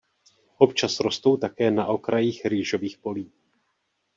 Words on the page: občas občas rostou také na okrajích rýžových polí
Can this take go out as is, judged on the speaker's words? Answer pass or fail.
fail